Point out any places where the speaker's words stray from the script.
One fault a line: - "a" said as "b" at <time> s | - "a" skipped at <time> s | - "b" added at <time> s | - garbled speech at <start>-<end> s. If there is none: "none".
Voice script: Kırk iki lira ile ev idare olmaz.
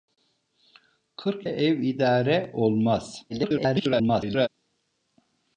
- "iki lira ile" skipped at 1.5 s
- garbled speech at 3.3-4.5 s